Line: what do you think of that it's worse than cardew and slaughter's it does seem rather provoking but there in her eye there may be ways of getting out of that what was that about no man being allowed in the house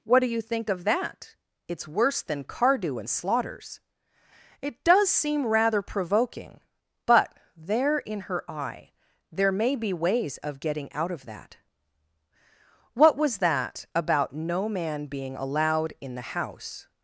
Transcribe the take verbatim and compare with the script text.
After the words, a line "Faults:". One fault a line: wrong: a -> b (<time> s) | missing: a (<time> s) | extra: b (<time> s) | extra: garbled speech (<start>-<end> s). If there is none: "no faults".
what do you think of that it's worse than cardew and slaughter's it does seem rather provoking but there in her eye there may be ways of getting out of that what was that about no man being allowed in the house
Faults:
no faults